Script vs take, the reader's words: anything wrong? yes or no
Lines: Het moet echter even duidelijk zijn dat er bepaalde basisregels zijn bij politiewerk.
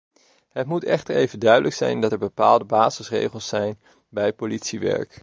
no